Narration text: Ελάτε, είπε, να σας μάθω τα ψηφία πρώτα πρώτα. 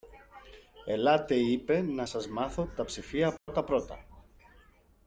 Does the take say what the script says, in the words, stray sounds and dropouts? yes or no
no